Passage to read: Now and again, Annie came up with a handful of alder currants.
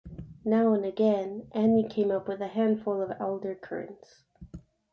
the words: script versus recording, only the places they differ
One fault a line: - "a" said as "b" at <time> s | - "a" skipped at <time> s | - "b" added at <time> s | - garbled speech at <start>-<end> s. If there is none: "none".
none